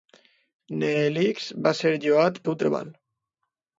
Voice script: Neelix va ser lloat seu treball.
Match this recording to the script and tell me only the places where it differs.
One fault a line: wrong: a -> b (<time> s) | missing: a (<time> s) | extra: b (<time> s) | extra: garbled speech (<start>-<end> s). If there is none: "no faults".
no faults